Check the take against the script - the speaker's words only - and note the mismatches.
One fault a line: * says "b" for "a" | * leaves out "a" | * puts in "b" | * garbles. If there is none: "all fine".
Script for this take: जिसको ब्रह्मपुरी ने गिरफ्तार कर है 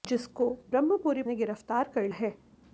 all fine